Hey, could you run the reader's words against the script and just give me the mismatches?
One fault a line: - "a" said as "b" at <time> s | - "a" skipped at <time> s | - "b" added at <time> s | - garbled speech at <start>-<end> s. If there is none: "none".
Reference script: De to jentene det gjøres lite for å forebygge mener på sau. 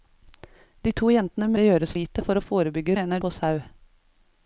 none